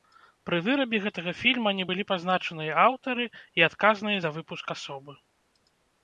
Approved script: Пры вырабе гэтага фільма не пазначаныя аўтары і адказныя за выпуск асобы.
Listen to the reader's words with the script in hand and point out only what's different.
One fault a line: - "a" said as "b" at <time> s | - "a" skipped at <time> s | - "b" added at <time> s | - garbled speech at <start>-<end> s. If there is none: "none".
- "былі" added at 1.9 s